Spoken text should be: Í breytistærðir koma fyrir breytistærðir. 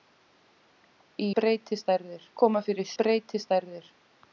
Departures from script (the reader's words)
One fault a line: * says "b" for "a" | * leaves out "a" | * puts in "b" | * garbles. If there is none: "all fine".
all fine